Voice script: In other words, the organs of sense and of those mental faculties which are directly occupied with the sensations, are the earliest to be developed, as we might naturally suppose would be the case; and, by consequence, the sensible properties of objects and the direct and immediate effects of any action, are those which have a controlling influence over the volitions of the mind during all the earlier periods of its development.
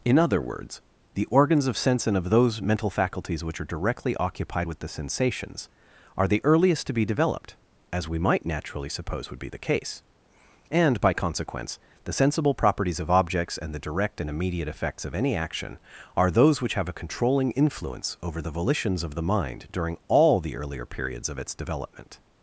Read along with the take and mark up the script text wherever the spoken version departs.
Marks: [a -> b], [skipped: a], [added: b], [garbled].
In other words, the organs of sense and of those mental faculties which are directly occupied with the sensations, are the earliest to be developed, as we might naturally suppose would be the case; and, by consequence, the sensible properties of objects and the direct and immediate effects of any action, are those which have a controlling influence over the volitions of the mind during all the earlier periods of its development.